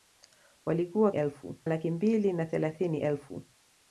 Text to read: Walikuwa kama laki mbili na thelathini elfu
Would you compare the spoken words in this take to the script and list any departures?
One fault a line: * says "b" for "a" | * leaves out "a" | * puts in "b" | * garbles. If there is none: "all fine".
* says "elfu" for "kama"